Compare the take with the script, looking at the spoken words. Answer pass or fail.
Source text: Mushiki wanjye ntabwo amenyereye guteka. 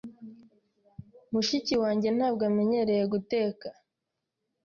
pass